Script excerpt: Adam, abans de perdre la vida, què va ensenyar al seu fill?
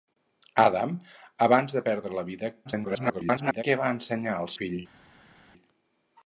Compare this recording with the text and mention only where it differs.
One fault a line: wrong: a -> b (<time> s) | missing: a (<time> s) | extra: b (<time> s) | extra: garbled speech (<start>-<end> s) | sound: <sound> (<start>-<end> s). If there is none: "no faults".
extra: garbled speech (2.6-3.6 s)
missing: seu (4.5 s)